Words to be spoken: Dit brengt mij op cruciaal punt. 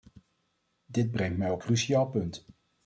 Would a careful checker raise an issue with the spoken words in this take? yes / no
no